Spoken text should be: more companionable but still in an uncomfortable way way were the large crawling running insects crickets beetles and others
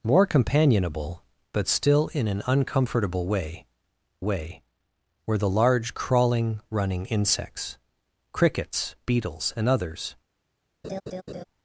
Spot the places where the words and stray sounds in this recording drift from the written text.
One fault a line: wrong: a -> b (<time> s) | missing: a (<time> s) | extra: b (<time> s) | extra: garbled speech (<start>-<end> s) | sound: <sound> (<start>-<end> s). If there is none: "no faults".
sound: laugh (10.8-11.4 s)